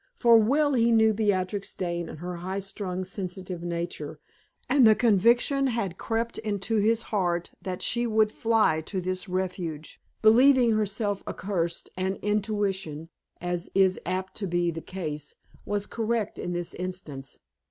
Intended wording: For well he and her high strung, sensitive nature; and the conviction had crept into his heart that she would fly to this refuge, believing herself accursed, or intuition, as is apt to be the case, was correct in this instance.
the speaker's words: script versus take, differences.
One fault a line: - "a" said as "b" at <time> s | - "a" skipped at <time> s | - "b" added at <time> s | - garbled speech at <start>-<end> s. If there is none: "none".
- "knew Beatrix Dane" added at 0.9 s
- "or" said as "and" at 11.9 s